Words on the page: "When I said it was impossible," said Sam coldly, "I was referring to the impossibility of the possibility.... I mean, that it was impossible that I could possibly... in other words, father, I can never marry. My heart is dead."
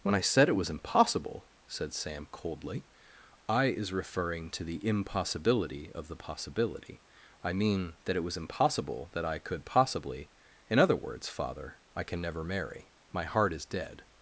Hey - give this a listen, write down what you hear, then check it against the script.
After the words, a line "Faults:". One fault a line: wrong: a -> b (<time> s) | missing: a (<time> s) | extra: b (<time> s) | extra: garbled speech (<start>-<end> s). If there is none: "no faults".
"When I said it was impossible," said Sam coldly, "I is referring to the impossibility of the possibility.... I mean, that it was impossible that I could possibly... in other words, father, I can never marry. My heart is dead."
Faults:
wrong: was -> is (3.7 s)